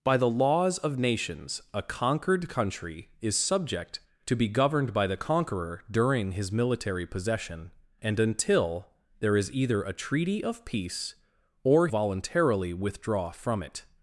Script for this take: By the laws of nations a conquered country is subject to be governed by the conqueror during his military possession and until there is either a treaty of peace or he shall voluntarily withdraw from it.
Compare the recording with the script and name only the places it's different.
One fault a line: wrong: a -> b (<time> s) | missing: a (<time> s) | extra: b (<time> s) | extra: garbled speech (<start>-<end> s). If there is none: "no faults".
missing: he shall (11.9 s)